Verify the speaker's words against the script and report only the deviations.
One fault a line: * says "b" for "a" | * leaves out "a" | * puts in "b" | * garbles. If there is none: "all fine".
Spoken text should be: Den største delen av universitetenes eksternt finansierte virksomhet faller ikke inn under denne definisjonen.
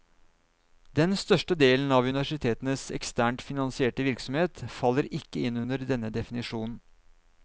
all fine